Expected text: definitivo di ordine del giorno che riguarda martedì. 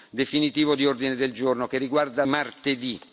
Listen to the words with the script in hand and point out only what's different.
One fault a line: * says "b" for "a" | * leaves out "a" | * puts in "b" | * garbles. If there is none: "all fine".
all fine